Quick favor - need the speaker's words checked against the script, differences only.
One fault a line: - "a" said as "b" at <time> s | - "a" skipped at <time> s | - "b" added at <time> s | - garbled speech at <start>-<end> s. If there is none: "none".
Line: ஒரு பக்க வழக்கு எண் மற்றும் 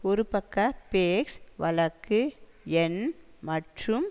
- "பேஸ்" added at 0.9 s